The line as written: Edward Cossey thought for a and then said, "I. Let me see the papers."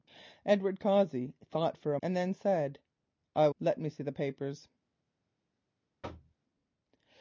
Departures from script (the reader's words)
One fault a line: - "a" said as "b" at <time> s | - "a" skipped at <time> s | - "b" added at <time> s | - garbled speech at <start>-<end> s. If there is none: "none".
none